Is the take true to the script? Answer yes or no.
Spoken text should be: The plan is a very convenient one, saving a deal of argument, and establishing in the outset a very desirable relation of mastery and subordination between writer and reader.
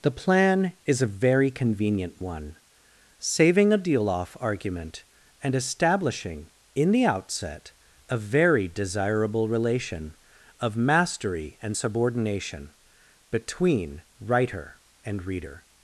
no